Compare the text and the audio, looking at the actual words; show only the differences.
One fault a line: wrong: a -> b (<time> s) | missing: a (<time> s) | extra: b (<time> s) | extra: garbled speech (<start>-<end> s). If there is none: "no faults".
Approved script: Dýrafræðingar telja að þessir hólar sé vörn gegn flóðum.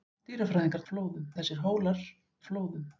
wrong: telja -> flóðum (0.9 s)
missing: sé vörn gegn (2.0 s)